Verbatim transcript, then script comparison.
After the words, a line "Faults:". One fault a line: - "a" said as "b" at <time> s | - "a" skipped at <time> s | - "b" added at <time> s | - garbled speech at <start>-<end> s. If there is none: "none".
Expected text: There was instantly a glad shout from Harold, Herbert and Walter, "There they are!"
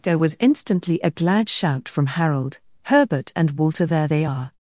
There was instantly a glad shout from Harold, Herbert and Walter, "There they are!"
Faults:
none